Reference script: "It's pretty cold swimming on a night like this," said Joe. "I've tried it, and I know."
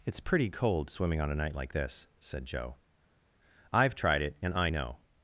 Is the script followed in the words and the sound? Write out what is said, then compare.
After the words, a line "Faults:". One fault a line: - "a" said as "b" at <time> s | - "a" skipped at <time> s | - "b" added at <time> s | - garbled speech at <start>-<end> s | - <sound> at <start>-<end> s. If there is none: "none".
"It's pretty cold swimming on a night like this," said Joe. "I've tried it, and I know."
Faults:
none